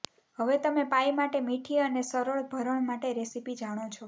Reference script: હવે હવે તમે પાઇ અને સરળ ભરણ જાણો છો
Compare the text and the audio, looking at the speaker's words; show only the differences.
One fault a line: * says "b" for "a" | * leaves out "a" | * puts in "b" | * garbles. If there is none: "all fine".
* leaves out "હવે"
* puts in "માટે મીઠી"
* puts in "માટે રેસીપી"